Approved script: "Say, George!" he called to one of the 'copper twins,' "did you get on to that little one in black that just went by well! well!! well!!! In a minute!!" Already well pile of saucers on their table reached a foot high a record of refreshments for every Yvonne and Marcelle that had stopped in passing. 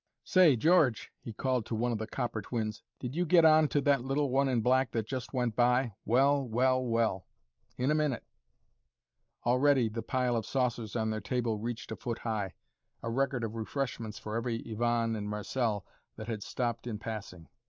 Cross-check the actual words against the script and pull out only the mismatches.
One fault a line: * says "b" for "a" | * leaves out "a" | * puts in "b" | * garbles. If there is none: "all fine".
* says "the" for "well"